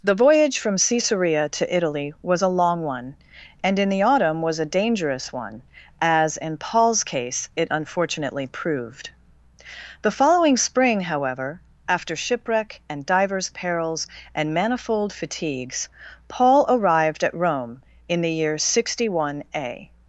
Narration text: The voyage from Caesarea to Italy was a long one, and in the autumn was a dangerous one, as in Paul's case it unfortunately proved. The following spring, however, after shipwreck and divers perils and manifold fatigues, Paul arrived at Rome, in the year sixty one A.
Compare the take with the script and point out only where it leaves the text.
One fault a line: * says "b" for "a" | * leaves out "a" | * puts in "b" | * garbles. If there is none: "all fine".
all fine